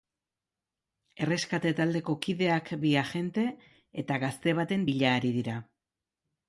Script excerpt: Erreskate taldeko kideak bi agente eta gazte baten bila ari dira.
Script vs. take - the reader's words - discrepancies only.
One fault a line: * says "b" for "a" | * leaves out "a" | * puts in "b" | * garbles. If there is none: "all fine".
all fine